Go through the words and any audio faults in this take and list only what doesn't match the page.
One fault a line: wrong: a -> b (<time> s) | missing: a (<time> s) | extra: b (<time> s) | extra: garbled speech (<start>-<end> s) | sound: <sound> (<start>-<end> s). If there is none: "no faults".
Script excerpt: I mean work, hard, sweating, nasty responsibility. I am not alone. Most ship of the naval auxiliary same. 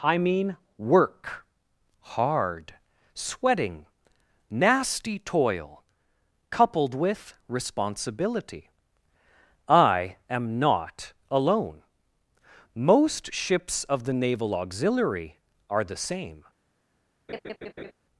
extra: toil coupled with (5.2 s)
wrong: ship -> ships (13.3 s)
extra: are the (15.7 s)
sound: laugh (17.3-17.9 s)